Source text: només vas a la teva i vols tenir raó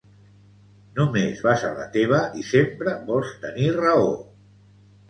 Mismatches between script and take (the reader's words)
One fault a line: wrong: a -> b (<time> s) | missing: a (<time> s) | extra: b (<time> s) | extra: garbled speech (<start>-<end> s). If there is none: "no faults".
extra: sempre (2.5 s)